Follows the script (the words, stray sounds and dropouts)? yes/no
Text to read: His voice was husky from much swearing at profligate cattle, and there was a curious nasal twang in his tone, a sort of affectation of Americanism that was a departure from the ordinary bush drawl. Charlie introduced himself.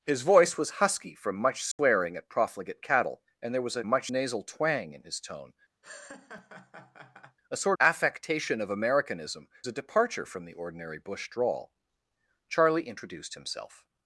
no